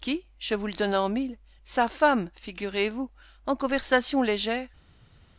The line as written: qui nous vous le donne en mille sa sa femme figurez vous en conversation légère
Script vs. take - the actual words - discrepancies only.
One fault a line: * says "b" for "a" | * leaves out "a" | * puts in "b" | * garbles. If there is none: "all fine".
* says "je" for "nous"
* leaves out "sa"